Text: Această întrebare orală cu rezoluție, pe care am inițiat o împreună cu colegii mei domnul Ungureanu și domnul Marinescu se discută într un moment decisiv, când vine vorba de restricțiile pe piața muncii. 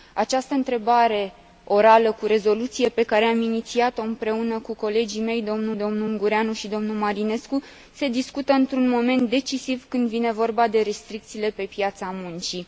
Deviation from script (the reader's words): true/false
true